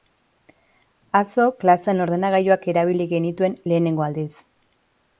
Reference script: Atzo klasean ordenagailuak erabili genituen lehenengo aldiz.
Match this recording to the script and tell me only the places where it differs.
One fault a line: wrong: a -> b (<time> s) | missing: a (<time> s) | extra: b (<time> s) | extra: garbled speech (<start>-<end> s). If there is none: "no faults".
no faults